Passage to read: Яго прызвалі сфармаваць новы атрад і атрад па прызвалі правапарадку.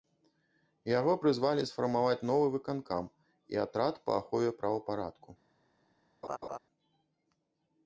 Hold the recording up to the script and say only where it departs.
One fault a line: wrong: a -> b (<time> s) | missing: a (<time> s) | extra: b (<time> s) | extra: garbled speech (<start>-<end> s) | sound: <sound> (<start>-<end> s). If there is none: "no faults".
wrong: атрад -> выканкам (2.5 s)
wrong: прызвалі -> ахове (4.2 s)
sound: laugh (6.2-6.6 s)